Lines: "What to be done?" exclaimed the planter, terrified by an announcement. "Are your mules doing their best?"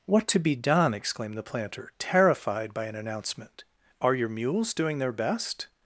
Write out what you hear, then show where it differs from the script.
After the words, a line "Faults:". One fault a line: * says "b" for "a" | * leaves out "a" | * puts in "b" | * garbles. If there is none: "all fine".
"What to be done?" exclaimed the planter, terrified by an announcement. "Are your mules doing their best?"
Faults:
all fine